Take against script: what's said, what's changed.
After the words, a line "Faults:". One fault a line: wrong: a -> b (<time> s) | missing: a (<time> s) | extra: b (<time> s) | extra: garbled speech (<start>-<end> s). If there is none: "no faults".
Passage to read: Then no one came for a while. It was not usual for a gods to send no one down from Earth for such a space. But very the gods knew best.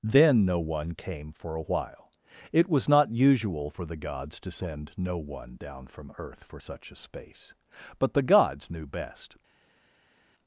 Then no one came for a while. It was not usual for the gods to send no one down from Earth for such a space. But the gods knew best.
Faults:
wrong: a -> the (3.9 s)
missing: very (8.1 s)